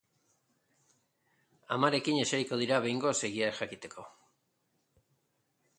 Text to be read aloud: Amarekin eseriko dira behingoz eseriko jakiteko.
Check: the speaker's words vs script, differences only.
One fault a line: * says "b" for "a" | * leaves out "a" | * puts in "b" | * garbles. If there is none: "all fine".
* says "egia" for "eseriko"